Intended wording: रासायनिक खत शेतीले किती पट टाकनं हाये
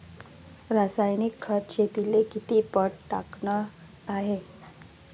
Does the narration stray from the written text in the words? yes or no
no